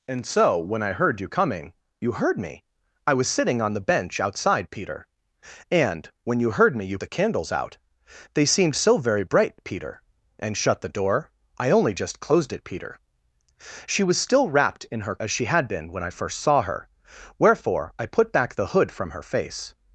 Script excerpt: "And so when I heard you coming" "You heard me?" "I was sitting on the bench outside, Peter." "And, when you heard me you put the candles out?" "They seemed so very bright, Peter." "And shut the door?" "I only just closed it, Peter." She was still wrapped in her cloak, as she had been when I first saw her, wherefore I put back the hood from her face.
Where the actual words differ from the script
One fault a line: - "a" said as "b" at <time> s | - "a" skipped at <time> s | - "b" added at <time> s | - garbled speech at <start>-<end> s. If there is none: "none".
- "put" skipped at 7.0 s
- "cloak" skipped at 15.2 s